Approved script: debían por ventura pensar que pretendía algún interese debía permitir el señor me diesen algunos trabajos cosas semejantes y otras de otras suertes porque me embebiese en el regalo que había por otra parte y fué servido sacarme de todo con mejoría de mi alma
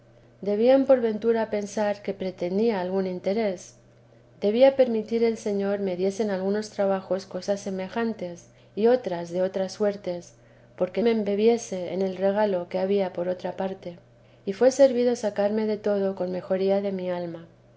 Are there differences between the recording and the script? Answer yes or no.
no